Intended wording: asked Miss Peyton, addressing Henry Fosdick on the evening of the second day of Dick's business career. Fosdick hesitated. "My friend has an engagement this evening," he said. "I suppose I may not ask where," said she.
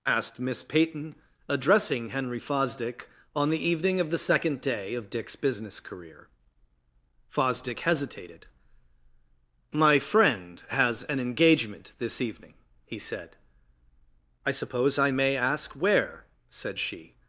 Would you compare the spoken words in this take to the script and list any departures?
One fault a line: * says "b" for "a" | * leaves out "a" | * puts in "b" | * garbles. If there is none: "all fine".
* leaves out "not"